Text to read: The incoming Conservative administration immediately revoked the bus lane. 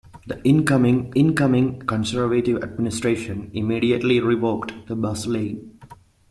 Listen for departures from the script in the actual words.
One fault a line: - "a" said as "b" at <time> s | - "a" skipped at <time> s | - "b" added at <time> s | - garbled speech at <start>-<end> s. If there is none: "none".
- "incoming" added at 1.1 s